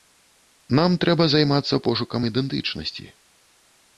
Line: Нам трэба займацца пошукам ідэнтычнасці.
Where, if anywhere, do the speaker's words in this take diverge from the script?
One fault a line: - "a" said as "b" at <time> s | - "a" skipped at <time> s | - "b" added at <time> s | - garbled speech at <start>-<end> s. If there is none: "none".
none